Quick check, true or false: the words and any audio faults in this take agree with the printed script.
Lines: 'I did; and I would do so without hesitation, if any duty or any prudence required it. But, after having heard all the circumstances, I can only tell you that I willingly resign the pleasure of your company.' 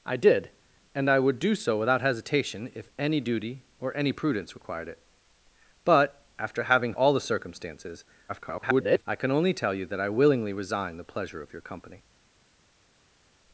false